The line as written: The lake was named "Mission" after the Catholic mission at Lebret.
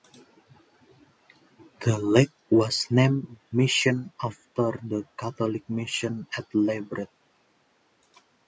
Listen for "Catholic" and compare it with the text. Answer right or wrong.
right